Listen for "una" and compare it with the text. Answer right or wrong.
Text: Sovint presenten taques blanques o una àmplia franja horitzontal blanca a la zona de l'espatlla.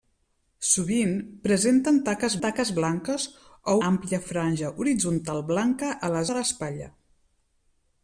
wrong